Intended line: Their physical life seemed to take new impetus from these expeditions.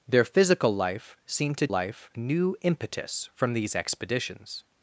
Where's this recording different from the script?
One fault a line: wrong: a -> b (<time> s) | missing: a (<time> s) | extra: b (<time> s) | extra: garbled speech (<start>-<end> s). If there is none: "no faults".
wrong: take -> life (1.7 s)